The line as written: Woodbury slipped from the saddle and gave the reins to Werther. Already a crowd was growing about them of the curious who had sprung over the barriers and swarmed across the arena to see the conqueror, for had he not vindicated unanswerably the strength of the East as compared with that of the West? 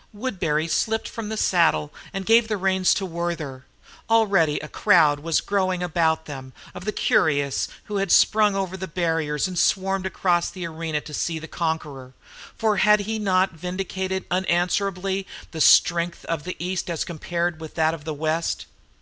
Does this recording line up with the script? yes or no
yes